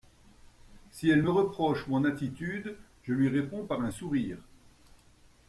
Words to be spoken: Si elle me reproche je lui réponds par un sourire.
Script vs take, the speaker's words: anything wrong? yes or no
yes